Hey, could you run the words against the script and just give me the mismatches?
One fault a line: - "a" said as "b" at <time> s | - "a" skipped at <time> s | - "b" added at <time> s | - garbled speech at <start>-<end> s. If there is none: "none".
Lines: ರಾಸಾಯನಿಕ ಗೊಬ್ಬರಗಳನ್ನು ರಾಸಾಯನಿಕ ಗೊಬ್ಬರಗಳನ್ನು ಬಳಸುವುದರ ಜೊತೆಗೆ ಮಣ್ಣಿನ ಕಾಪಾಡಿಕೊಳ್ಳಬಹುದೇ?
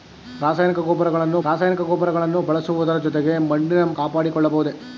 none